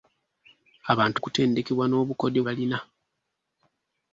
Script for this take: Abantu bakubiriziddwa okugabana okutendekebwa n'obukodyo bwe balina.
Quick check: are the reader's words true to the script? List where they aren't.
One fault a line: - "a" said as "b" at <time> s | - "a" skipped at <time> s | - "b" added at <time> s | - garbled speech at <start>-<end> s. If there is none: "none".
- "bakubiriziddwa okugabana" skipped at 1.2 s
- "bwe" skipped at 2.4 s